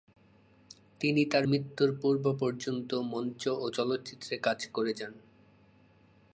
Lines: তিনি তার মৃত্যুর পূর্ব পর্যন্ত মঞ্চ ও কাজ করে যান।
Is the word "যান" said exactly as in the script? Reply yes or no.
yes